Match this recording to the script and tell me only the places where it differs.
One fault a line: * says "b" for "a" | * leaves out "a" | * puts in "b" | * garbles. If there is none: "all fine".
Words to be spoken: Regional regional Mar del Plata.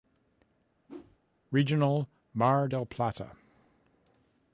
* leaves out "regional"